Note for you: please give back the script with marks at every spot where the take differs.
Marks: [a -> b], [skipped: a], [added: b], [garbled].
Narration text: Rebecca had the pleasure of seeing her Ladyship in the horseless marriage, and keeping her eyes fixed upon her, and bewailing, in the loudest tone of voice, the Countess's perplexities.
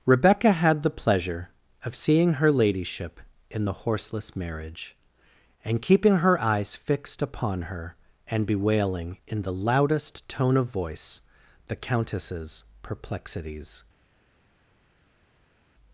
Rebecca had the pleasure of seeing her Ladyship in the horseless marriage, and keeping her eyes fixed upon her, and bewailing, in the loudest tone of voice, the Countess's perplexities.